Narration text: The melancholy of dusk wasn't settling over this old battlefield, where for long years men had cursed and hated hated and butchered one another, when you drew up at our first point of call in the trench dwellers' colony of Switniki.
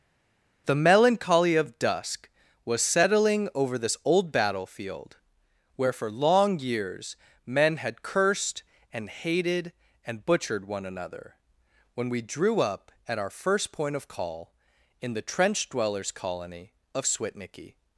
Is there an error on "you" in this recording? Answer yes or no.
yes